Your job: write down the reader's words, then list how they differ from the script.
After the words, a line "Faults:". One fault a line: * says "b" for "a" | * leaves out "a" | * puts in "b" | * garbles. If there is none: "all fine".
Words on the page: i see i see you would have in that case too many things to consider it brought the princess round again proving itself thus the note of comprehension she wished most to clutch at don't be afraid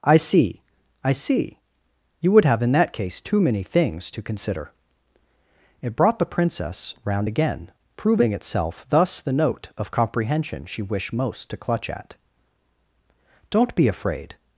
i see i see you would have in that case too many things to consider it brought the princess round again proving itself thus the note of comprehension she wished most to clutch at don't be afraid
Faults:
all fine